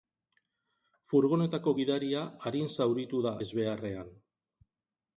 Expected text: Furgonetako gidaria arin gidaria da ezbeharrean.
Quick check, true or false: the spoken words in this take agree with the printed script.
false